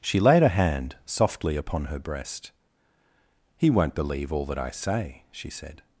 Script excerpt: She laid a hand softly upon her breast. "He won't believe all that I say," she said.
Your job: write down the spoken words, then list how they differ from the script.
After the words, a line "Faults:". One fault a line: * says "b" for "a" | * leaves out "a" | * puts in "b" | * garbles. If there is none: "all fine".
She laid a hand softly upon her breast. "He won't believe all that I say," she said.
Faults:
all fine